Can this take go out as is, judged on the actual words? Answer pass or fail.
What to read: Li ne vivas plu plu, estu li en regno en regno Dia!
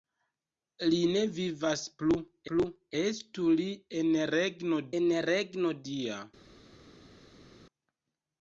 pass